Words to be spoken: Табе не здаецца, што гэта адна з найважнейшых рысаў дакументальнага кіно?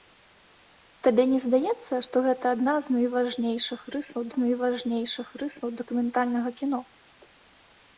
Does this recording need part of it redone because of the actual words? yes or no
yes